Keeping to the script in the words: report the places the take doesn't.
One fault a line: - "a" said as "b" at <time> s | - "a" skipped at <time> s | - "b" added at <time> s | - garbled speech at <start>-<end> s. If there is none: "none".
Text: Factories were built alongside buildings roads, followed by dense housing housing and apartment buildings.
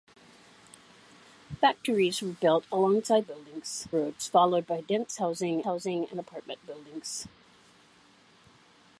none